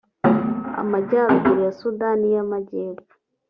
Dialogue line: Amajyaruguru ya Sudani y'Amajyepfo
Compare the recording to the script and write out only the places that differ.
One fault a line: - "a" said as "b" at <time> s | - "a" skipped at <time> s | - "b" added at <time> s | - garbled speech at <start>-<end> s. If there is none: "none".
none